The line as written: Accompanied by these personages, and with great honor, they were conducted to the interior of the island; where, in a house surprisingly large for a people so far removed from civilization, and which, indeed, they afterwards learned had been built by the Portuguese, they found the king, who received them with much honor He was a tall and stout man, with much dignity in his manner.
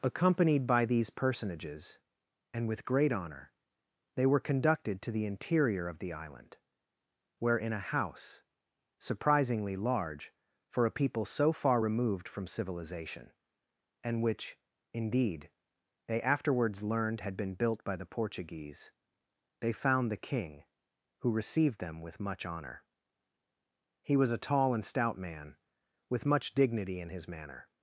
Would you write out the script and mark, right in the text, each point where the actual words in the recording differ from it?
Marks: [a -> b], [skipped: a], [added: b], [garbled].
Accompanied by these personages, and with great honor, they were conducted to the interior of the island; where, in a house surprisingly large for a people so far removed from civilization, and which, indeed, they afterwards learned had been built by the Portuguese, they found the king, who received them with much honor He was a tall and stout man, with much dignity in his manner.